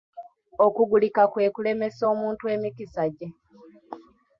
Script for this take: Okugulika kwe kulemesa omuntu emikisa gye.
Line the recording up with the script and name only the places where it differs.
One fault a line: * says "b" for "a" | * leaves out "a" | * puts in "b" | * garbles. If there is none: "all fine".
all fine